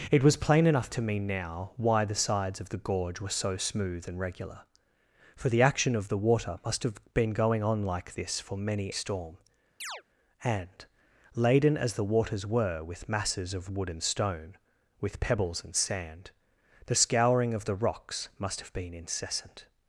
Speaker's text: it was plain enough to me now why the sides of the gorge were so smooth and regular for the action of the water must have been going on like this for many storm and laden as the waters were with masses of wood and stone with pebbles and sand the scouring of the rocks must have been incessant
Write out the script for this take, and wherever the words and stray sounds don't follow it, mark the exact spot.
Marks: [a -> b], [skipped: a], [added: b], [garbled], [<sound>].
it was plain enough to me now why the sides of the gorge were so smooth and regular for the action of the water must have been going on like this for many storm [chirp] and laden as the waters were with masses of wood and stone with pebbles and sand the scouring of the rocks must have been incessant